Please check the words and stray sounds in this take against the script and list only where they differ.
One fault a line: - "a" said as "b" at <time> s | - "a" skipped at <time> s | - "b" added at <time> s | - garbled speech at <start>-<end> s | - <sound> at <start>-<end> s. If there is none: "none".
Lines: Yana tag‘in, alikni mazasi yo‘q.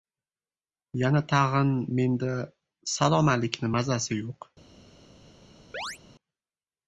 - "menda salom" added at 2.0 s
- chirp at 5.7-6.0 s